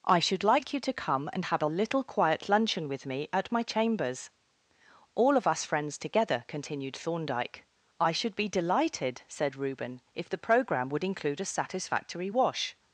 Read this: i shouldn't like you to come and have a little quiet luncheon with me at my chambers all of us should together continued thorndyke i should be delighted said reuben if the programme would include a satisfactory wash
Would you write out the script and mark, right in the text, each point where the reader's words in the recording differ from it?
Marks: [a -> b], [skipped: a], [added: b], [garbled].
i [shouldn't -> should] like you to come and have a little quiet luncheon with me at my chambers all of us [should -> friends] together continued thorndyke i should be delighted said reuben if the programme would include a satisfactory wash